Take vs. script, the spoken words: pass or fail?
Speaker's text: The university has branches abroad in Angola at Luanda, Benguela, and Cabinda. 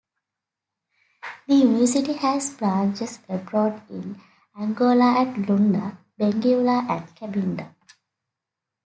pass